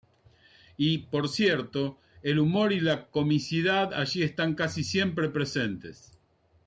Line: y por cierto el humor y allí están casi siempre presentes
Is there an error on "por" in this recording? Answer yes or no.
no